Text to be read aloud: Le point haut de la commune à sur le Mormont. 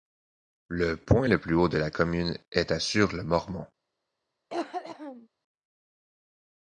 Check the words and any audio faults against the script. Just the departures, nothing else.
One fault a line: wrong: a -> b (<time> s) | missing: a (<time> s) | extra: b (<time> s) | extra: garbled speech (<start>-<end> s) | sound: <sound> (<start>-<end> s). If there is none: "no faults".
extra: le plus (1.3 s)
extra: est (2.5 s)
sound: cough (4.5-5.3 s)